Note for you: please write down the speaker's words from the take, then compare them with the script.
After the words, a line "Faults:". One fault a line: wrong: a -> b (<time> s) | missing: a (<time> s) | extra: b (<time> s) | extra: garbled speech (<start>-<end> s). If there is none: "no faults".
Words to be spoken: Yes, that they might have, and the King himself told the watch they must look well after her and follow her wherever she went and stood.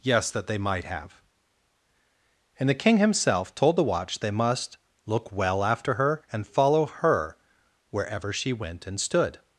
Yes, that they might have, and the King himself told the watch they must look well after her and follow her wherever she went and stood.
Faults:
no faults